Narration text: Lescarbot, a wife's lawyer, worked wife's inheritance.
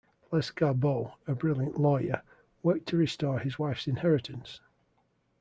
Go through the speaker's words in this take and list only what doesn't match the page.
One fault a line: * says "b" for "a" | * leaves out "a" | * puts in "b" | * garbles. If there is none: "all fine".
* says "brilliant" for "wife's"
* puts in "to restore his"